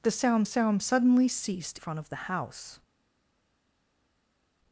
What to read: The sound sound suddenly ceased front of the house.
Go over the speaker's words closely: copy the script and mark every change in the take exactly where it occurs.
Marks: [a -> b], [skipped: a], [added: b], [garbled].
The sound sound suddenly ceased front of the house.